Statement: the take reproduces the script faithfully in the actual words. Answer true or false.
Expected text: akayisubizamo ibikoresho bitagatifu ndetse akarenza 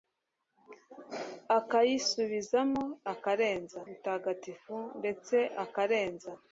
false